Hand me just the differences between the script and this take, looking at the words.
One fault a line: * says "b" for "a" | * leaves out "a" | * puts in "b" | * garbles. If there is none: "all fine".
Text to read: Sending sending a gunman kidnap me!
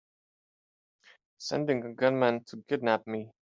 * leaves out "sending"
* puts in "to"